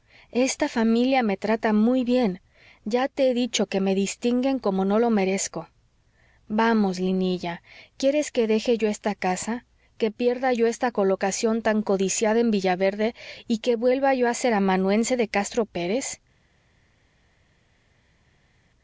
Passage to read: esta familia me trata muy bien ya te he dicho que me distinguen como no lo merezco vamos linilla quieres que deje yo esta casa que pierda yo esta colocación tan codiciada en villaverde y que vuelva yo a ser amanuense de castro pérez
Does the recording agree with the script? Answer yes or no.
yes